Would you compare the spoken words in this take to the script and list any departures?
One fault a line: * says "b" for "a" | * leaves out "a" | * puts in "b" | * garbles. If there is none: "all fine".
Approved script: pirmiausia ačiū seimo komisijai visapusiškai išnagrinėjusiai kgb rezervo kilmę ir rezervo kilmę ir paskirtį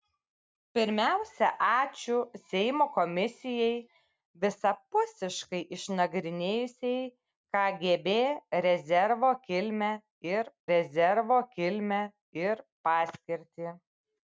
all fine